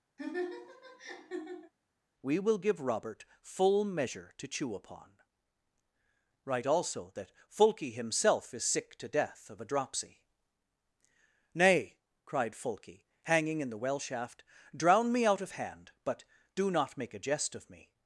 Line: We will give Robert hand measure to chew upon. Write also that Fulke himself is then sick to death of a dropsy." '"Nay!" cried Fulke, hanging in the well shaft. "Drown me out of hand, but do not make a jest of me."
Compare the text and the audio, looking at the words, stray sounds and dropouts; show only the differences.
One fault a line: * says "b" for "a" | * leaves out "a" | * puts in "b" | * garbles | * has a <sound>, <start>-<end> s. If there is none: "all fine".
* has a laugh, 0.2-1.7 s
* says "full" for "hand"
* leaves out "then"